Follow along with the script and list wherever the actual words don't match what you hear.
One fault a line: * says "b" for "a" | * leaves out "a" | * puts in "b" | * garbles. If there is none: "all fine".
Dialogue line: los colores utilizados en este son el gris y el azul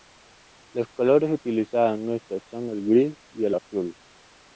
all fine